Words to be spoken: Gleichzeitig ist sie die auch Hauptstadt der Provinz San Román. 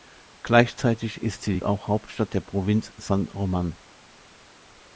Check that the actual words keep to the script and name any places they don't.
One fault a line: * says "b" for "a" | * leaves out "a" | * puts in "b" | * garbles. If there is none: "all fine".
all fine